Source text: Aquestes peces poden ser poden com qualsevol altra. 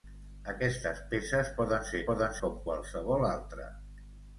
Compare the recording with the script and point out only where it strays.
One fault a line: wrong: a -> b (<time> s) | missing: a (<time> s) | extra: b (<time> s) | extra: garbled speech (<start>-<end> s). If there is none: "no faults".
no faults